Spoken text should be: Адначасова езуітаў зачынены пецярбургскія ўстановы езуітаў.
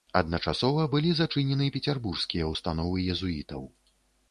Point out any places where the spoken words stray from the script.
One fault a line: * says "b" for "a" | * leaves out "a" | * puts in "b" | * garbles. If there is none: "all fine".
* says "былі" for "езуітаў"